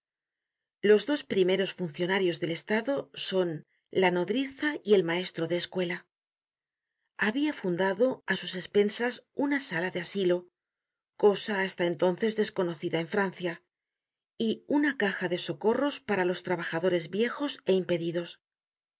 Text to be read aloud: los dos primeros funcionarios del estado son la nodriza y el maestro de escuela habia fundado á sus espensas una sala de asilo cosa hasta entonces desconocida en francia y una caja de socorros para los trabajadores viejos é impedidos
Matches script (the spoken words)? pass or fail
pass